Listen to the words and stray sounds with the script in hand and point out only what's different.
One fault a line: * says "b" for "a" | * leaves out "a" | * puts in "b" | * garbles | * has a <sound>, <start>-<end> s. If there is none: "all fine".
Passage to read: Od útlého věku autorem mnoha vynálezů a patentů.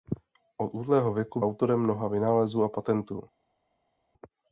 all fine